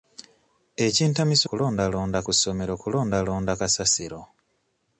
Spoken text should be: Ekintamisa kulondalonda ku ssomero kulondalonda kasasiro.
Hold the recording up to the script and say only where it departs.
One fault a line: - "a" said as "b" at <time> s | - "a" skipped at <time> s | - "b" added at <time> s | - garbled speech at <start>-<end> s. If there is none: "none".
none